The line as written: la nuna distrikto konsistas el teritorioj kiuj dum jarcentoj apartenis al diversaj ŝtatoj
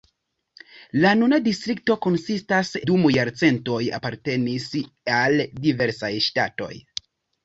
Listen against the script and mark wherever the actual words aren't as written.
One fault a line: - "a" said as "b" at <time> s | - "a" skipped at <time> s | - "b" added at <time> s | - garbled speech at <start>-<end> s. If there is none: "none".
- "el teritorioj kiuj" skipped at 2.7 s